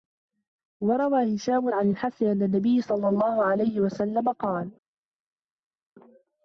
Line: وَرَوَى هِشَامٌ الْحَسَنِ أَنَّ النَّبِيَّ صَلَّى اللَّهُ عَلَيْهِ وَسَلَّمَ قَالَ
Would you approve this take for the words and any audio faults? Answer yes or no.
no